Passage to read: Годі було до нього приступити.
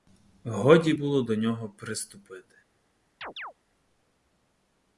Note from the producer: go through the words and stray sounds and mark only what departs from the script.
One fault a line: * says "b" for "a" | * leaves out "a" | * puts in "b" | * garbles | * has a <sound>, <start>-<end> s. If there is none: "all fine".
* has a chirp, 3.2-3.5 s